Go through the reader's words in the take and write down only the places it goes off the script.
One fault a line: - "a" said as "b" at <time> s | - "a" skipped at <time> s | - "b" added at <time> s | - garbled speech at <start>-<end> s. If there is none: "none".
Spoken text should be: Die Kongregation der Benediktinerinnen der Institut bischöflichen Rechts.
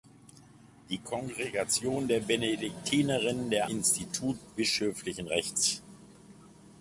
none